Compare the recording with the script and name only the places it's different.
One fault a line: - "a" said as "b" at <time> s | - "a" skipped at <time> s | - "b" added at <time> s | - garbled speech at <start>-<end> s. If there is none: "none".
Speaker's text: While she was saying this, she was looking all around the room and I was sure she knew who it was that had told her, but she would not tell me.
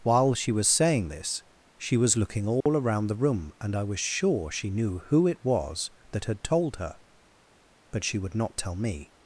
none